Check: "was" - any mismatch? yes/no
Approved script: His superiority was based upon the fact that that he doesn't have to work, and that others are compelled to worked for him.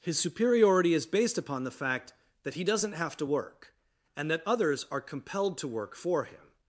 yes